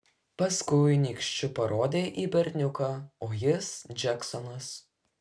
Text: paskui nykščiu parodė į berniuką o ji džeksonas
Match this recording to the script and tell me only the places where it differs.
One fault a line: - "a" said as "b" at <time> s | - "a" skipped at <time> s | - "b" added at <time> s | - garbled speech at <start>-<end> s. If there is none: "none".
- "ji" said as "jis" at 3.4 s